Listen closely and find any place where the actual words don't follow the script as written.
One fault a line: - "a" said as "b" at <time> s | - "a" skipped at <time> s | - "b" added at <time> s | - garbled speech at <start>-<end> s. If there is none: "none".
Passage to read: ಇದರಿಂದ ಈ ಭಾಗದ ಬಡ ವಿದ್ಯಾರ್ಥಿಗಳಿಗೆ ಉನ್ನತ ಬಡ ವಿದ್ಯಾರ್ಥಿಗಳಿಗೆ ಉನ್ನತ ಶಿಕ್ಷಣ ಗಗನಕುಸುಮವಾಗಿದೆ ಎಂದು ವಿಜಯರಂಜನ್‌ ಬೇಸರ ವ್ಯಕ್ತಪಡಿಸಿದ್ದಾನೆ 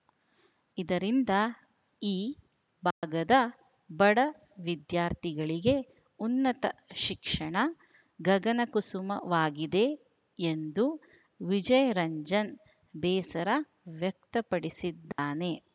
- "ಬಡ ವಿದ್ಯಾರ್ಥಿಗಳಿಗೆ ಉನ್ನತ" skipped at 6.7 s